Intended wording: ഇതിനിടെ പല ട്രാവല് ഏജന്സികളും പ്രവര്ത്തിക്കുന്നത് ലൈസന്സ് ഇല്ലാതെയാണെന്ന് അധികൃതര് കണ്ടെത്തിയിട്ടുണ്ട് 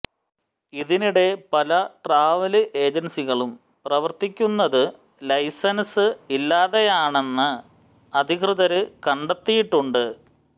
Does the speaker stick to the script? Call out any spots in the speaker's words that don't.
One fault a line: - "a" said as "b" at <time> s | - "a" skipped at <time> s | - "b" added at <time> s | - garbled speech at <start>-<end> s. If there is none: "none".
none